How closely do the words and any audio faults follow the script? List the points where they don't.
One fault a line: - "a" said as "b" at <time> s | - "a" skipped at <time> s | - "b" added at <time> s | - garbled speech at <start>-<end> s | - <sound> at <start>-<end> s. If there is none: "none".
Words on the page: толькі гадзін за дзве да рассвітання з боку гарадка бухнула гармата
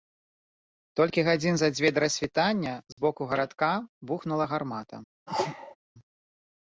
- dropout at 2.9-3.0 s
- sneeze at 5.3-5.8 s